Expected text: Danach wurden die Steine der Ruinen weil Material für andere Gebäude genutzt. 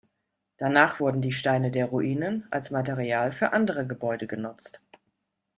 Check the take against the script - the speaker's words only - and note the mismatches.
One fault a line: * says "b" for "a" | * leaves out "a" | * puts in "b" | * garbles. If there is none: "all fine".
* says "als" for "weil"